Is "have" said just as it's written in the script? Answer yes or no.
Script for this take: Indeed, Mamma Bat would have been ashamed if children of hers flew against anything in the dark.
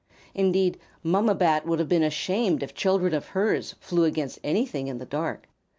yes